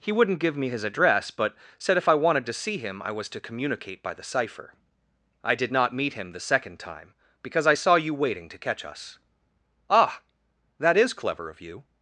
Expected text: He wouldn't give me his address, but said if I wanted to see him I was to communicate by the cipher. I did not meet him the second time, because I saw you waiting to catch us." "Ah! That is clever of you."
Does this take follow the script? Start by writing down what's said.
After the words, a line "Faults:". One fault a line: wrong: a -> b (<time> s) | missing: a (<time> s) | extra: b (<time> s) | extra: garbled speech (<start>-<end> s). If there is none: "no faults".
He wouldn't give me his address, but said if I wanted to see him I was to communicate by the cipher. I did not meet him the second time, because I saw you waiting to catch us." "Ah! That is clever of you."
Faults:
no faults